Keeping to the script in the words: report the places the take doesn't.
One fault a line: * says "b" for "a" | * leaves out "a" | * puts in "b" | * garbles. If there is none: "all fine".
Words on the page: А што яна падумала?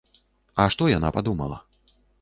all fine